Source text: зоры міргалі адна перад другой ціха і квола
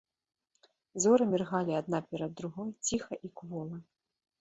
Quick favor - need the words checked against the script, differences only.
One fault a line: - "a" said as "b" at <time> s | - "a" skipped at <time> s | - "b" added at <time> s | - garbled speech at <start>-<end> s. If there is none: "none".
none